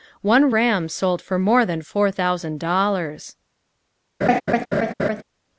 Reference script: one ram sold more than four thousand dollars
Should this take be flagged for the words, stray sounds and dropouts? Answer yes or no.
yes